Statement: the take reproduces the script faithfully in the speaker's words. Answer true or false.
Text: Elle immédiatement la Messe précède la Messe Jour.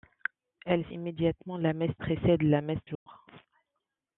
true